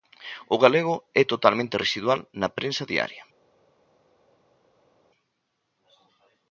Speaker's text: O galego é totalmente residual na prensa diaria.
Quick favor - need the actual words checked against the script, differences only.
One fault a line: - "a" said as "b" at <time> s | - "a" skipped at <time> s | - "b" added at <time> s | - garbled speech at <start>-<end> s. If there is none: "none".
none